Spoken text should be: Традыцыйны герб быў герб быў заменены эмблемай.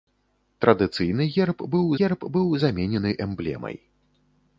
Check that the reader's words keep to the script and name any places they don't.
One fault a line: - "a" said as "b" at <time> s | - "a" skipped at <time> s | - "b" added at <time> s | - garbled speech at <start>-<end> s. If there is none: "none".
none